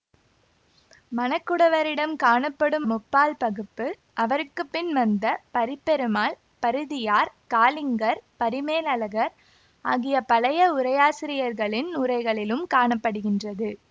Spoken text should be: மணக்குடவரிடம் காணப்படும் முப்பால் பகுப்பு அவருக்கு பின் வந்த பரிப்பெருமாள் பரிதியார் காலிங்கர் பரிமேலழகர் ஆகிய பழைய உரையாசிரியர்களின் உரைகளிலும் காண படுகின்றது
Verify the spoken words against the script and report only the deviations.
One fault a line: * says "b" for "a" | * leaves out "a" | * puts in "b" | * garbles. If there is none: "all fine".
all fine